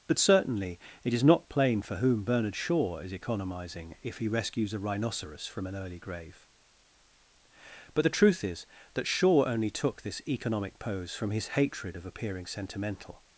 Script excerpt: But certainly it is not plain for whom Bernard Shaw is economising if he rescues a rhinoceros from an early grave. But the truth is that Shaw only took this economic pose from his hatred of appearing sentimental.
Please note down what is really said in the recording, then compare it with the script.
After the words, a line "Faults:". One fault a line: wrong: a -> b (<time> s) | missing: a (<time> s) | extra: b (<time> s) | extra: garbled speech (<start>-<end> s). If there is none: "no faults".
But certainly it is not plain for whom Bernard Shaw is economising if he rescues a rhinoceros from an early grave. But the truth is that Shaw only took this economic pose from his hatred of appearing sentimental.
Faults:
no faults